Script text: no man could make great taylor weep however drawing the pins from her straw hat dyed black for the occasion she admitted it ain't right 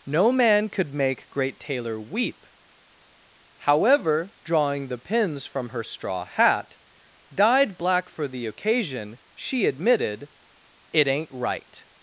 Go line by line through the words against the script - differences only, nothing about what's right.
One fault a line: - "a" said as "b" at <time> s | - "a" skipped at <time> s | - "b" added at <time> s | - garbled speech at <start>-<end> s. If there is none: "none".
none